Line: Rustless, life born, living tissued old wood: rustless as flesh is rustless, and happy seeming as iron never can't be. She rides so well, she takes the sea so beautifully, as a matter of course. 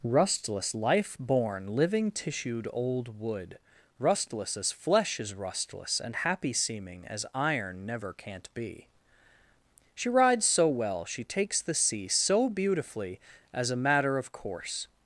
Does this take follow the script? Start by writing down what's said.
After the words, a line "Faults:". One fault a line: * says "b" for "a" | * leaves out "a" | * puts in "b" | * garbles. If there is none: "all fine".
Rustless, life born, living tissued old wood: rustless as flesh is rustless, and happy seeming as iron never can't be. She rides so well, she takes the sea so beautifully, as a matter of course.
Faults:
all fine